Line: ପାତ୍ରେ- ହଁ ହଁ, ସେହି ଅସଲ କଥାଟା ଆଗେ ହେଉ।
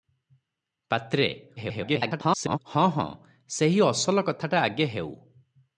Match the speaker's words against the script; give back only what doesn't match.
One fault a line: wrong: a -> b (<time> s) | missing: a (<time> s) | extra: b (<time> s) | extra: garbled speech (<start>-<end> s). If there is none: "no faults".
extra: garbled speech (1.6-2.6 s)